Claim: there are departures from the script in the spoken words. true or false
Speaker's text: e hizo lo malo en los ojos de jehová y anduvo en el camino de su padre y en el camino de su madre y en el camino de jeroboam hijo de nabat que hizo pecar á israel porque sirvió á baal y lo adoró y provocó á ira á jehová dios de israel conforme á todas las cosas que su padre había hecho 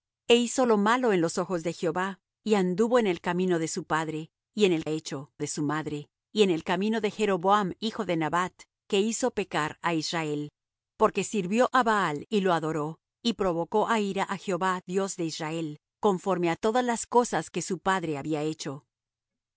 true